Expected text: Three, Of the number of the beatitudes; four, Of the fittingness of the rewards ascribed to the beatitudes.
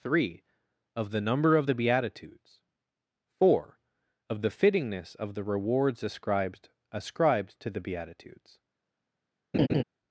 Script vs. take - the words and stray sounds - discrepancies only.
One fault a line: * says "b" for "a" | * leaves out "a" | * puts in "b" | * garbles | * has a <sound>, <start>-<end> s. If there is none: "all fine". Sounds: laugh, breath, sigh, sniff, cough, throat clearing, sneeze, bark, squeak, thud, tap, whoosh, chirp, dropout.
* puts in "ascribed"
* has a laugh, 9.5-9.8 s